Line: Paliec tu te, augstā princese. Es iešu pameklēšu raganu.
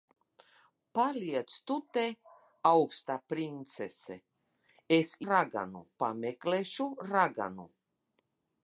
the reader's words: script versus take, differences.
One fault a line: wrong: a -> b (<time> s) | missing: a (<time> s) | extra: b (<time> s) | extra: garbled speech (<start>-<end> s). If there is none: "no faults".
wrong: iešu -> raganu (5.3 s)